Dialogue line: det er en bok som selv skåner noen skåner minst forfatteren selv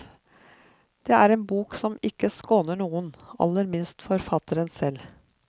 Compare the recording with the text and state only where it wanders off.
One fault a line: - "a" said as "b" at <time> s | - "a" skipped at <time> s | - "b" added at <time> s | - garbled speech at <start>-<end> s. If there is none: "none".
- "selv" said as "ikke" at 2.1 s
- "skåner" said as "aller" at 3.5 s